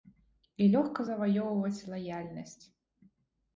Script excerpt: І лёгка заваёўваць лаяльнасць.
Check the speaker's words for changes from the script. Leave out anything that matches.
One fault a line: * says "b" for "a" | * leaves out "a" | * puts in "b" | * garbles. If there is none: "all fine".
all fine